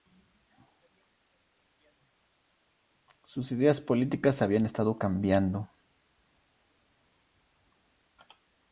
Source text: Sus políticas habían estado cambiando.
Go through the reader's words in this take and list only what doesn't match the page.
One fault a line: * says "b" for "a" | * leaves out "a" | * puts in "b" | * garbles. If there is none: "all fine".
* puts in "ideas"